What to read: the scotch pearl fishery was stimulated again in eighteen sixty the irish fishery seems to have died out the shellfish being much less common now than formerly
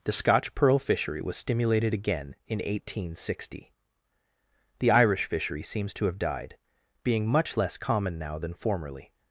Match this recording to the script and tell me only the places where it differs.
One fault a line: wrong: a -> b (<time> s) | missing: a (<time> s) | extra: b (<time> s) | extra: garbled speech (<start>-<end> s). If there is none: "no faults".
missing: out the shellfish (6.6 s)